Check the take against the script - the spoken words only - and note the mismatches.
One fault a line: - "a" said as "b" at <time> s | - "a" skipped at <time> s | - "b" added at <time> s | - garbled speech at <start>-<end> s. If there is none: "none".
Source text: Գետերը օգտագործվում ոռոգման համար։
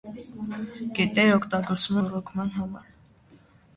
none